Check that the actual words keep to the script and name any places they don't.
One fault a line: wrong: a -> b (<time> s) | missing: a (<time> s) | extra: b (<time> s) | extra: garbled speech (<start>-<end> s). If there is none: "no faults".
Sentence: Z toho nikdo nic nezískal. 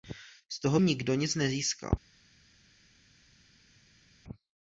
no faults